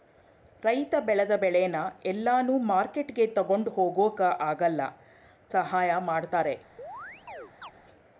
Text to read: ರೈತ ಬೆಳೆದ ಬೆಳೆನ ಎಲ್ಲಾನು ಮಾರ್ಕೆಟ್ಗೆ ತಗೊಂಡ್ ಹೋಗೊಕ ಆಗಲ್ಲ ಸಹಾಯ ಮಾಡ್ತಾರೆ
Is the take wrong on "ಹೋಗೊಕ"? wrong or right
right